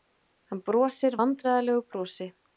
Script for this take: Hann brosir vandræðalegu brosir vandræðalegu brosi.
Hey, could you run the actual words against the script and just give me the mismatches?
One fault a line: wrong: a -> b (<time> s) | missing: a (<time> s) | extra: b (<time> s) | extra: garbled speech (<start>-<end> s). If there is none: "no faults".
missing: brosir vandræðalegu (1.8 s)